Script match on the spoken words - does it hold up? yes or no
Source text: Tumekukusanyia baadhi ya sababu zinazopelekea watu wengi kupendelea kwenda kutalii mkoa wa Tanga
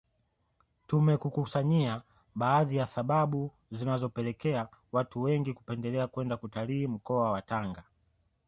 yes